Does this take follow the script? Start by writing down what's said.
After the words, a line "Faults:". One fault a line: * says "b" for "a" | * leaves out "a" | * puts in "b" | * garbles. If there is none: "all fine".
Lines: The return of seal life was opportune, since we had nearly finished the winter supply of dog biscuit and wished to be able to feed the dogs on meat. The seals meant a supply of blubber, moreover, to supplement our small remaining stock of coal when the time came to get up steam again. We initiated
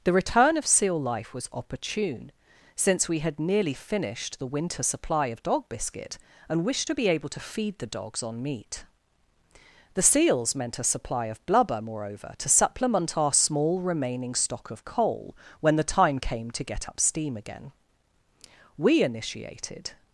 The return of seal life was opportune, since we had nearly finished the winter supply of dog biscuit and wished to be able to feed the dogs on meat. The seals meant a supply of blubber, moreover, to supplement our small remaining stock of coal when the time came to get up steam again. We initiated
Faults:
all fine